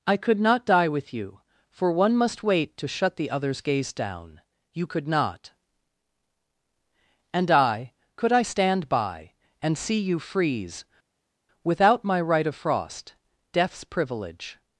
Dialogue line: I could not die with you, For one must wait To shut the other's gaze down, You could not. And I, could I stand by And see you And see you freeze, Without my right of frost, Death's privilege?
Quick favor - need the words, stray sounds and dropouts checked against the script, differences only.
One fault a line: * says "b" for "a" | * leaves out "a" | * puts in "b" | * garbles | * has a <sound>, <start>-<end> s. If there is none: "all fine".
* leaves out "And see you"